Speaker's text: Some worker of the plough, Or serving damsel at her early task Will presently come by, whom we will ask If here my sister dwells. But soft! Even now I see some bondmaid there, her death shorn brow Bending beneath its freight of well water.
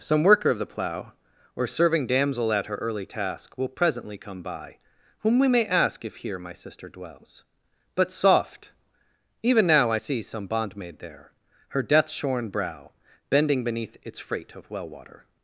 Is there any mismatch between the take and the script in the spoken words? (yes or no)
yes